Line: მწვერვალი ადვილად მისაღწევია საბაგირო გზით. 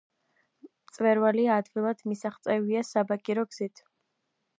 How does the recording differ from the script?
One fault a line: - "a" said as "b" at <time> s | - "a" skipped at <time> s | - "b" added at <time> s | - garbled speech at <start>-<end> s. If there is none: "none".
none